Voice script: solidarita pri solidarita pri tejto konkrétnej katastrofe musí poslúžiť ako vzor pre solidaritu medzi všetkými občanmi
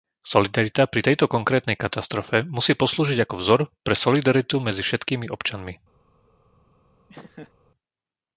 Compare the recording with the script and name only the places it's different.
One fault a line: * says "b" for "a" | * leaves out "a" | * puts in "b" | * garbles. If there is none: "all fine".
* leaves out "solidarita pri"